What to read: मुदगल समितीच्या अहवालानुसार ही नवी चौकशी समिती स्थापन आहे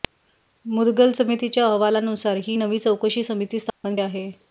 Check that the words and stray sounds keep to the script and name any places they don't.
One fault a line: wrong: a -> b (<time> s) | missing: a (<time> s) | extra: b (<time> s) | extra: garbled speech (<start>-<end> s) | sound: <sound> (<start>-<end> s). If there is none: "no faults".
sound: dropout (3.7-3.8 s)